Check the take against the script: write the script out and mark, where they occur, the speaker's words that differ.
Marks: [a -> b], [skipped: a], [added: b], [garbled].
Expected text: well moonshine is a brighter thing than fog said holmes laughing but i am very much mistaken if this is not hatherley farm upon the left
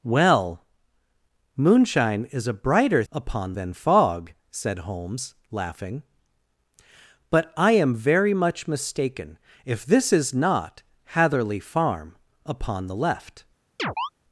well moonshine is a brighter [thing -> upon] than fog said holmes laughing but i am very much mistaken if this is not hatherley farm upon the left